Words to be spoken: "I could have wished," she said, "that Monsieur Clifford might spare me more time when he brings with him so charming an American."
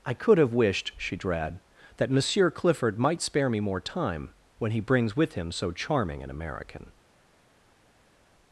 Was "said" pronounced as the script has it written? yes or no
no